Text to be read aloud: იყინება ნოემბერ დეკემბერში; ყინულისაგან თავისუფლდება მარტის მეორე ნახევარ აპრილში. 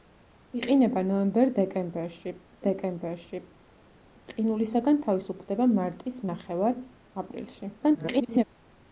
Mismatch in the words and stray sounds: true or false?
true